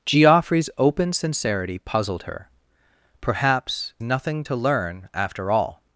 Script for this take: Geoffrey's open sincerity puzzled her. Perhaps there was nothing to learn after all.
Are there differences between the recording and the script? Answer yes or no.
yes